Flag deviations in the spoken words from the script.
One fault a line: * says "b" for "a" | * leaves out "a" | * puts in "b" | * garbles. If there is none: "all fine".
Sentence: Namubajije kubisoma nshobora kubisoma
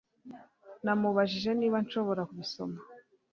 * says "niba" for "kubisoma"